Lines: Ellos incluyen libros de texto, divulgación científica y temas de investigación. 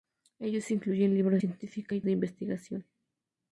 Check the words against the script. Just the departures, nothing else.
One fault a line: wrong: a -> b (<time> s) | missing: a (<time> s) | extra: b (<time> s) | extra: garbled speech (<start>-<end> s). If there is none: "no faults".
missing: de texto divulgación (1.4 s)
missing: temas (2.0 s)